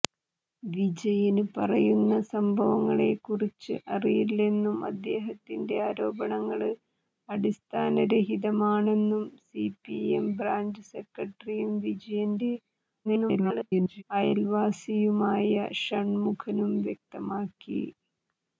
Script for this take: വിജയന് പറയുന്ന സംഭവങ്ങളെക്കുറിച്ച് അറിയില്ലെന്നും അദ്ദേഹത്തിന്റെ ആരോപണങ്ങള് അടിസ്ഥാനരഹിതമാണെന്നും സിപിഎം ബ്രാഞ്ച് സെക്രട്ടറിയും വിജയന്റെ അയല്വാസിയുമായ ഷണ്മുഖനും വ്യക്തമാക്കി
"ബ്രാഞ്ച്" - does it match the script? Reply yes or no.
yes